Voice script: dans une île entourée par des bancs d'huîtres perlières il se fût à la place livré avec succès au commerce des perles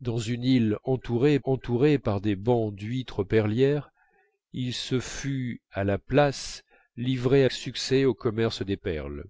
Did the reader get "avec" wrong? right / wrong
wrong